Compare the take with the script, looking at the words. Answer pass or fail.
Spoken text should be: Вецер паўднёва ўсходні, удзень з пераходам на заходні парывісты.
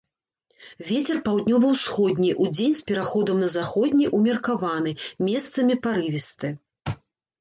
fail